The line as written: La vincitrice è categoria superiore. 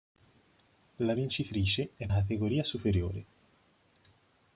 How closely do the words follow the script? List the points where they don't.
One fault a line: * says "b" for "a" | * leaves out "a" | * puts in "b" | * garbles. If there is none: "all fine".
all fine